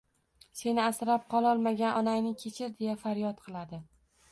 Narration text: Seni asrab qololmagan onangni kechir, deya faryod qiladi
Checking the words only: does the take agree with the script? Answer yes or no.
yes